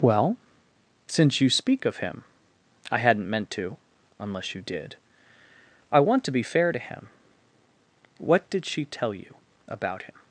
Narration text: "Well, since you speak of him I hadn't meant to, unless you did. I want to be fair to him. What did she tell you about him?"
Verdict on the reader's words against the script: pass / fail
pass